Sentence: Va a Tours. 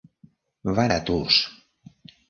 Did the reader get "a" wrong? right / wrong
right